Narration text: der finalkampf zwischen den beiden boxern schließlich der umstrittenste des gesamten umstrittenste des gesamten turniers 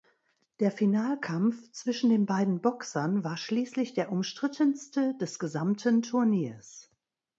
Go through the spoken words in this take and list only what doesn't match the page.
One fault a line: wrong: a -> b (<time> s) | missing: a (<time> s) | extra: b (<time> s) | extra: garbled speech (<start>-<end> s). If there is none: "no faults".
extra: war (3.2 s)
missing: umstrittenste des gesamten (6.0 s)